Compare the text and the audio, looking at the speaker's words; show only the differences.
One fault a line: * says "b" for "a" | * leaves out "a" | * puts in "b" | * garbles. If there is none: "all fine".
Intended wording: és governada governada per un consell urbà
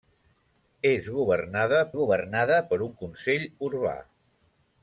all fine